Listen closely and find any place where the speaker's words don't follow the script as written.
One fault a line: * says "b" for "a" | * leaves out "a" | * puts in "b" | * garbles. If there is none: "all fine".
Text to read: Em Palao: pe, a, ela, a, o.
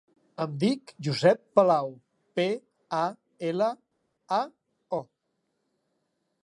* puts in "dic Josep"